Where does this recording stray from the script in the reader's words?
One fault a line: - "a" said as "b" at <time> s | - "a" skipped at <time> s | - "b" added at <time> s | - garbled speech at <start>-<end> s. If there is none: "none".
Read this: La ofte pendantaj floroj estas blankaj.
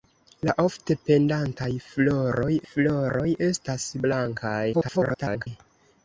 - "floroj" added at 2.7 s
- garbled speech at 4.7-5.5 s